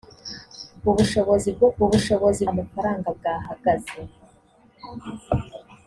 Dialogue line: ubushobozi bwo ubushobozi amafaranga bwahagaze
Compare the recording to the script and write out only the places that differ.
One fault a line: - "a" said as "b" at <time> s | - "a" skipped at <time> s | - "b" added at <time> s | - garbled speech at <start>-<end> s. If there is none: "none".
none